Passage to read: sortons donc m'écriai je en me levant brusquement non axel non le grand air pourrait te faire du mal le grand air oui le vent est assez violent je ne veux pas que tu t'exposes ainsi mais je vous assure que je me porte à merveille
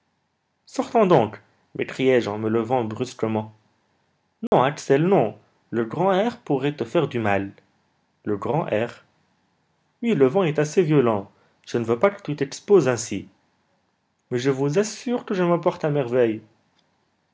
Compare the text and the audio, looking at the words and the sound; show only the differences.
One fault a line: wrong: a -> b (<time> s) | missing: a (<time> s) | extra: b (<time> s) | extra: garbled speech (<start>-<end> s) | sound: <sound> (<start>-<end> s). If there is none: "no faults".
sound: dropout (4.5-4.5 s)